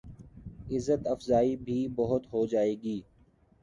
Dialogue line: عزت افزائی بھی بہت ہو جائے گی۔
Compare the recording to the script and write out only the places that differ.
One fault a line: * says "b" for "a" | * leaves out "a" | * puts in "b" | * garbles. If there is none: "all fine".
all fine